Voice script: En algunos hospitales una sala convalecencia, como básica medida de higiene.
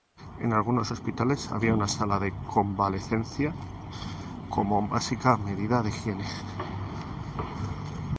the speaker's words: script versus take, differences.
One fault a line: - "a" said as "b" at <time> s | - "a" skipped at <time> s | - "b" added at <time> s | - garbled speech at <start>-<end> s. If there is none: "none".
- "había" added at 1.5 s
- "de" added at 2.2 s